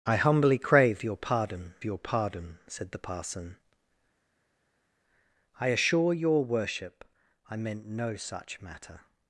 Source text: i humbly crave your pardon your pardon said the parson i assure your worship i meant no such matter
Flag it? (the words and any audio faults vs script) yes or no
no